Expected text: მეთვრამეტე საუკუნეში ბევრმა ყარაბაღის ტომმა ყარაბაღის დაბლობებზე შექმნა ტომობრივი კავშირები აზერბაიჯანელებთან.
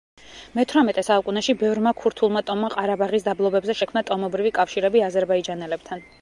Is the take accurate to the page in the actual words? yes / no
no